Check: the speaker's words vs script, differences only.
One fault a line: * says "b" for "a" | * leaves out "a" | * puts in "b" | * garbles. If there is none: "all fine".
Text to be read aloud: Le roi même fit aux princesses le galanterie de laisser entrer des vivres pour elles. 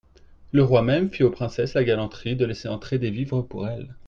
* says "la" for "le"